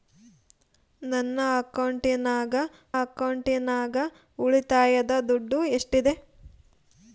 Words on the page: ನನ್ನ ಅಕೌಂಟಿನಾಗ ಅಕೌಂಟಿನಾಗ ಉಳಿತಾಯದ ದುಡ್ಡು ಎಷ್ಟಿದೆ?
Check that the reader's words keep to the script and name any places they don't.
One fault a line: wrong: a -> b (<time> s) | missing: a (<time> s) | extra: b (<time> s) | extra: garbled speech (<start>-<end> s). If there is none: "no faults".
no faults